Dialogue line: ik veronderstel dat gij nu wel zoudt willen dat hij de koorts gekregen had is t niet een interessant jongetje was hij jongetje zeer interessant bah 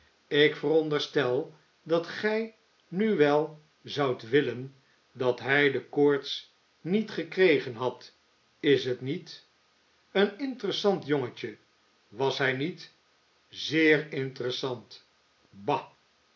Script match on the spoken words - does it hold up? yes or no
no